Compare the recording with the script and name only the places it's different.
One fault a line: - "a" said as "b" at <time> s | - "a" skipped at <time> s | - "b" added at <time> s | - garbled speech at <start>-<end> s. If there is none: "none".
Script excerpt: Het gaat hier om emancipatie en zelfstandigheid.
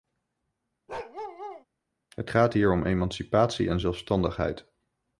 none